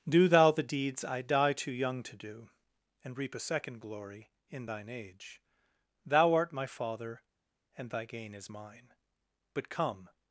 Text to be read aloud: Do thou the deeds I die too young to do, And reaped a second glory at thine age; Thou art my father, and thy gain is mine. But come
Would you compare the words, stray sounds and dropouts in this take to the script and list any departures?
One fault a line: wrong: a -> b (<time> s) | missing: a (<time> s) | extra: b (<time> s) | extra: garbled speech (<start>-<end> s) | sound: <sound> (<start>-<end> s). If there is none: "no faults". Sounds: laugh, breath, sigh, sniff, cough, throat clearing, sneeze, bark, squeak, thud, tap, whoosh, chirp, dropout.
wrong: reaped -> reap (3.2 s)
wrong: at -> in (4.5 s)